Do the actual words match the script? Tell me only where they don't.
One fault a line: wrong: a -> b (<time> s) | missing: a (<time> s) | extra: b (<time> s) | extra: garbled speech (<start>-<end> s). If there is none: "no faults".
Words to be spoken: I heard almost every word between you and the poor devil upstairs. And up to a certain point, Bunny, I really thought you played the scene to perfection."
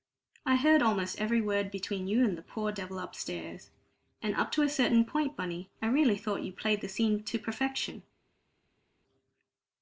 no faults